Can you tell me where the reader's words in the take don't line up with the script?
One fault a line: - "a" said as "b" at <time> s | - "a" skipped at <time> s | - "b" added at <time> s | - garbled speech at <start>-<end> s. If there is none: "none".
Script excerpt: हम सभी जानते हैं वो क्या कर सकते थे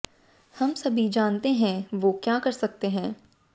- "थे" said as "हैं" at 2.9 s